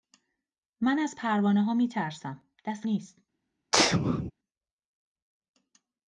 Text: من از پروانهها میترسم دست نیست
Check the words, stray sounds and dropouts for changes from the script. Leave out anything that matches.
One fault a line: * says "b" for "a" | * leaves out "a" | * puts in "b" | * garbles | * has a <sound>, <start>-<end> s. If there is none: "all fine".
* has a sneeze, 3.7-4.3 s